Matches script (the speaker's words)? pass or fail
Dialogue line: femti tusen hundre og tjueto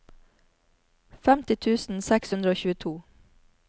fail